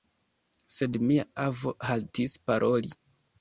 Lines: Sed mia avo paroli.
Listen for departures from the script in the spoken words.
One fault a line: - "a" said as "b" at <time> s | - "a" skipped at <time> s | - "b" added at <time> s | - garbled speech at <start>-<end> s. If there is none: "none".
- "haltis" added at 1.9 s